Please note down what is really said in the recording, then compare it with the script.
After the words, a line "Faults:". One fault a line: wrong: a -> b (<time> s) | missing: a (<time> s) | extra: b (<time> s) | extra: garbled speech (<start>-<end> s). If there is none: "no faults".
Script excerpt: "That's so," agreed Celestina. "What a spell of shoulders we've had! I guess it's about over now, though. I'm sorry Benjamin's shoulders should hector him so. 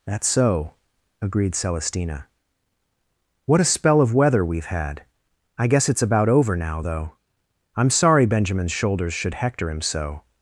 "That's so," agreed Celestina. "What a spell of weather we've had! I guess it's about over now, though. I'm sorry Benjamin's shoulders should hector him so.
Faults:
wrong: shoulders -> weather (4.1 s)